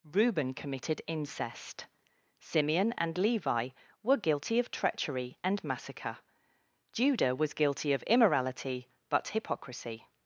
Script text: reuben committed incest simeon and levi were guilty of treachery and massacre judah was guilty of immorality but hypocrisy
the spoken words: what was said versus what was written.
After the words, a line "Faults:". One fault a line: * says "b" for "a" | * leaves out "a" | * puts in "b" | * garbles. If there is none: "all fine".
reuben committed incest simeon and levi were guilty of treachery and massacre judah was guilty of immorality but hypocrisy
Faults:
all fine